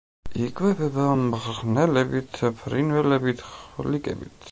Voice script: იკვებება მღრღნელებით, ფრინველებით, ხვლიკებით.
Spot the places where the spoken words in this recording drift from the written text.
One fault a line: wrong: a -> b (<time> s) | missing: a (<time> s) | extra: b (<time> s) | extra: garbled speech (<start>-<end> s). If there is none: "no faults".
no faults